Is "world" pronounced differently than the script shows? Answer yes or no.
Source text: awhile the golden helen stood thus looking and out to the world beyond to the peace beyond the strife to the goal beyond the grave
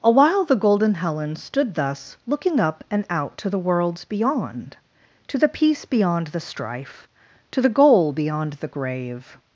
yes